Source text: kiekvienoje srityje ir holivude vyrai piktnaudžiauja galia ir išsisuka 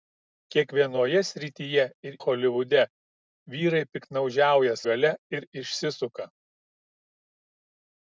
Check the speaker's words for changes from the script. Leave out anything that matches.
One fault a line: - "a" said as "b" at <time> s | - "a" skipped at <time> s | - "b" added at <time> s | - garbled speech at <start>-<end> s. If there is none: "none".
none